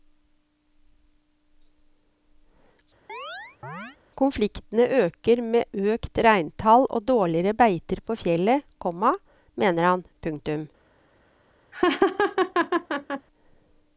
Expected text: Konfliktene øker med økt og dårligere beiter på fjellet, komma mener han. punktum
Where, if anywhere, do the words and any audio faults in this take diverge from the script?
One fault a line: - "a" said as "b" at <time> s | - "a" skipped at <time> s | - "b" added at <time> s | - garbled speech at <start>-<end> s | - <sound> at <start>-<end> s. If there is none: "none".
- chirp at 3.1-4.0 s
- "reintall" added at 6.3 s
- laugh at 11.7-13.3 s